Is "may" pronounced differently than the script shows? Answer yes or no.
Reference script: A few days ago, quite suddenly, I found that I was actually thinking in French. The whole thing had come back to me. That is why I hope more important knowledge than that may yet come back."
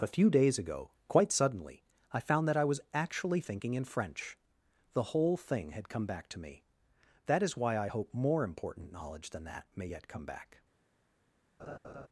no